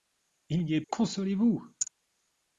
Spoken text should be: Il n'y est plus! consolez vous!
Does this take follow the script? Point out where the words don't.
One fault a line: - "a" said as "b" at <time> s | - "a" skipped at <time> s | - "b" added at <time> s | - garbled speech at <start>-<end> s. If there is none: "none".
- "plus" skipped at 0.8 s